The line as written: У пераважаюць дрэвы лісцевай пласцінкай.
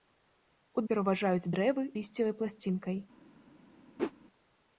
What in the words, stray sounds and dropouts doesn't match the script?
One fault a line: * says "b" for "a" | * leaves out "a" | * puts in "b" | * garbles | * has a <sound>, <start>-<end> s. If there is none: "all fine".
* has a whoosh, 4.0-4.1 s